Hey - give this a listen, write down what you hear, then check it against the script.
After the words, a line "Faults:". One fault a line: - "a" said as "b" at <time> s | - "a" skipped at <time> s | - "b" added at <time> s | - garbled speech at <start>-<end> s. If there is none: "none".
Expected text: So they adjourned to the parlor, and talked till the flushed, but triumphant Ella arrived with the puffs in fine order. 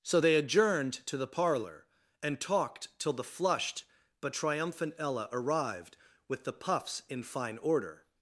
So they adjourned to the parlor, and talked till the flushed, but triumphant Ella arrived with the puffs in fine order.
Faults:
none